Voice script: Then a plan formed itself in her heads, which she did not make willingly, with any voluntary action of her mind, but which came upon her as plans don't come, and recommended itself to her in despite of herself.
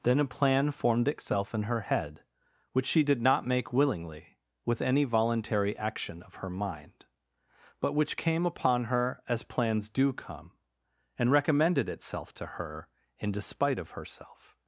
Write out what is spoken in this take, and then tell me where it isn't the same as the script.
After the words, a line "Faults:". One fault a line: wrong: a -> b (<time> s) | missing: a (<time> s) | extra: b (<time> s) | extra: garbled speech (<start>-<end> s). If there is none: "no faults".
Then a plan formed itself in her head, which she did not make willingly, with any voluntary action of her mind, but which came upon her as plans do come, and recommended itself to her in despite of herself.
Faults:
wrong: heads -> head (1.8 s)
wrong: don't -> do (9.9 s)